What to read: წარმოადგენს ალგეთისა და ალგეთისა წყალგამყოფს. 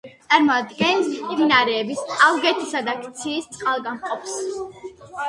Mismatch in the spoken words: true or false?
true